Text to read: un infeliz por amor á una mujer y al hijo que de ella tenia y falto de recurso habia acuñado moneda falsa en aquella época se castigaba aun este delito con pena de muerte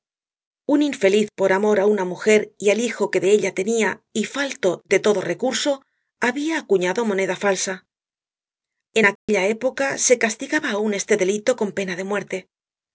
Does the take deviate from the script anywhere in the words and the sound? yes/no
yes